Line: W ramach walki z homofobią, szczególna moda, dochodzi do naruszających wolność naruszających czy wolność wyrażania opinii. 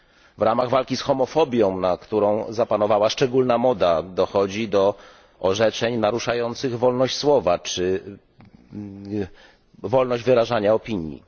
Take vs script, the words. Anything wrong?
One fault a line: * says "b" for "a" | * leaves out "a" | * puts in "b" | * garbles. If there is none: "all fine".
* puts in "na którą zapanowała"
* puts in "orzeczeń"
* says "słowa" for "naruszających"